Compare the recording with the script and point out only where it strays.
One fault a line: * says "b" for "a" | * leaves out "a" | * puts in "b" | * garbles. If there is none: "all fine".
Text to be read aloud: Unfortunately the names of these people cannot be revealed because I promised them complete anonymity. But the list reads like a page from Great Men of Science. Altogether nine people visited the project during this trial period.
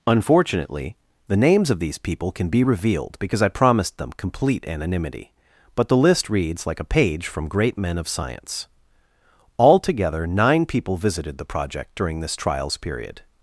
* says "can" for "cannot"
* says "trials" for "trial"